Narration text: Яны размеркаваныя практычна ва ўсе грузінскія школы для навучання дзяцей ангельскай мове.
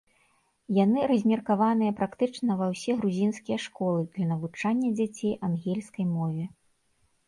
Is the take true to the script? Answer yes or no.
yes